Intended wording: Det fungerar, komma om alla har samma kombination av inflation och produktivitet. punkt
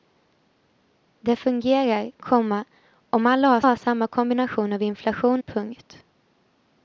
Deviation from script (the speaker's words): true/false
true